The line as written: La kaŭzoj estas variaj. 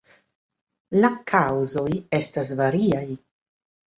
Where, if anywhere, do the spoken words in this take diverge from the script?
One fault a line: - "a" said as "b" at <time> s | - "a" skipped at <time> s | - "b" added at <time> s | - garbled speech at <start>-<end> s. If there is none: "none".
none